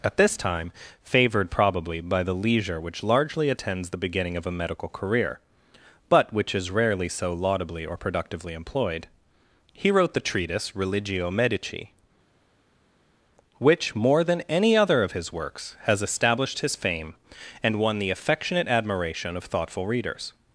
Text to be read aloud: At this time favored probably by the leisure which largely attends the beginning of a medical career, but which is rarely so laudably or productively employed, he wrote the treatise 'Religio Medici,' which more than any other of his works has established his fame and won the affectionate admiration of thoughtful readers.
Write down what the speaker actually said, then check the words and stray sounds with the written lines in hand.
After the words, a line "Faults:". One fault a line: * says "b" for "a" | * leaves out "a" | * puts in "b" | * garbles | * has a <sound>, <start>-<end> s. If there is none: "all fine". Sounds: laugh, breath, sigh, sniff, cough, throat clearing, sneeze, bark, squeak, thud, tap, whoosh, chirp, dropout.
At this time favored probably by the leisure which largely attends the beginning of a medical career, but which is rarely so laudably or productively employed, he wrote the treatise 'Religio Medici,' which more than any other of his works has established his fame and won the affectionate admiration of thoughtful readers.
Faults:
all fine